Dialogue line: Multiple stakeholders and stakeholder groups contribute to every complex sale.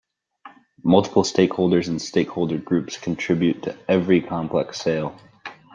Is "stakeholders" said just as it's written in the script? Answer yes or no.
yes